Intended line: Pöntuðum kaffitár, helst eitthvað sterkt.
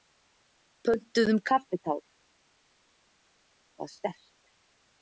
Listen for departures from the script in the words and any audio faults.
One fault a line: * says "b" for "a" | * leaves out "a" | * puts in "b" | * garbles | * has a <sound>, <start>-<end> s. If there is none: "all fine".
* leaves out "helst"